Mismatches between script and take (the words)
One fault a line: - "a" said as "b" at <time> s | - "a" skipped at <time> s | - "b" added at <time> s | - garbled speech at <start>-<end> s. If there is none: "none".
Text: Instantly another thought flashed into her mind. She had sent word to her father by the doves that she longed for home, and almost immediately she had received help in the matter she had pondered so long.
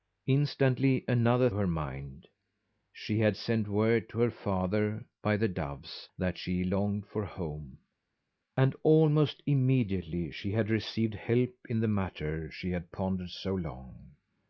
- "thought flashed into" skipped at 1.5 s